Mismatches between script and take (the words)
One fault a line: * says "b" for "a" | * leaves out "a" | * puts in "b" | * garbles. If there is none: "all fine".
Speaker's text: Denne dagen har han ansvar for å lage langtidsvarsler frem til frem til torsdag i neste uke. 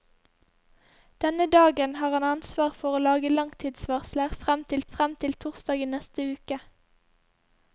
all fine